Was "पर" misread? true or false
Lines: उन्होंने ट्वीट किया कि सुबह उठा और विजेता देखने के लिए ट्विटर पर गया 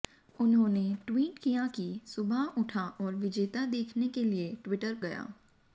true